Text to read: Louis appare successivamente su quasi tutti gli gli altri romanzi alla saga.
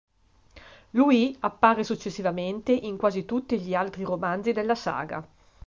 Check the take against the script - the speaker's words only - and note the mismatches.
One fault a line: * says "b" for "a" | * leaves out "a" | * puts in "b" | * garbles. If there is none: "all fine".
* says "in" for "su"
* leaves out "gli"
* says "della" for "alla"